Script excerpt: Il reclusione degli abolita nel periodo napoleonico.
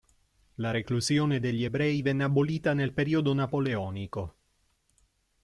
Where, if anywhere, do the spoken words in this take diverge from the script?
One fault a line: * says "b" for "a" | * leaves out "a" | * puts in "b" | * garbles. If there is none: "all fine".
* says "La" for "Il"
* puts in "ebrei venne"